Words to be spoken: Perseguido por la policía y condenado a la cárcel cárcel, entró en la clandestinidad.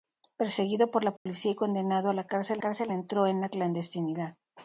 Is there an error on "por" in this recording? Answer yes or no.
no